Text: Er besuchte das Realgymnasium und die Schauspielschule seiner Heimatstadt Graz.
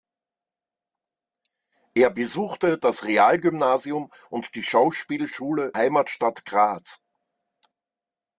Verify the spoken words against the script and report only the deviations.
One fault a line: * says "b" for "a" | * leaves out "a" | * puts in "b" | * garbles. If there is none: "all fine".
* leaves out "seiner"